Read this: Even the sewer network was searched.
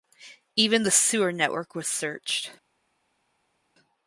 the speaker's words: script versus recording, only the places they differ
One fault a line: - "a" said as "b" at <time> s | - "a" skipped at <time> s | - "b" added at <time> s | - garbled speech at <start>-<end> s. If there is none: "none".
none